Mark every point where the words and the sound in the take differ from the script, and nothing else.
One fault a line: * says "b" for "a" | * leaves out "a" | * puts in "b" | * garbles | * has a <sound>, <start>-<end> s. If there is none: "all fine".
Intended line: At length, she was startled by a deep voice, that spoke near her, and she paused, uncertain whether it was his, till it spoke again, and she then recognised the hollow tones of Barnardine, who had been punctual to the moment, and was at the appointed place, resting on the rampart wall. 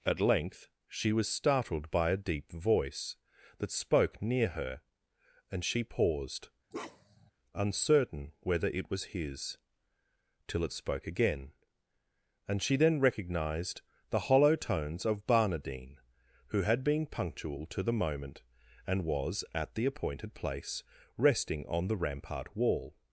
* has a bark, 6.7-7.3 s